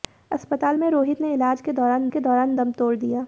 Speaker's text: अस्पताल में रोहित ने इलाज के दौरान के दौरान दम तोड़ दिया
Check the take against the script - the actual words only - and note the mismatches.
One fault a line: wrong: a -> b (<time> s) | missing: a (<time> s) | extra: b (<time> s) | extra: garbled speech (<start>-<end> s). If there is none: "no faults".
no faults